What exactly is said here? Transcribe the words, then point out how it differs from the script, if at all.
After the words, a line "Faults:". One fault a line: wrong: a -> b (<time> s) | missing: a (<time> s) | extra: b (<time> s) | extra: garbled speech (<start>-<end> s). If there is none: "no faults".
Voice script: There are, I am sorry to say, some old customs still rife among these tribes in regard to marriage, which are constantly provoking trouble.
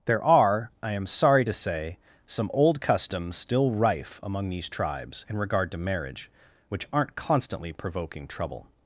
There are, I am sorry to say, some old customs still rife among these tribes in regard to marriage, which aren't constantly provoking trouble.
Faults:
wrong: are -> aren't (6.9 s)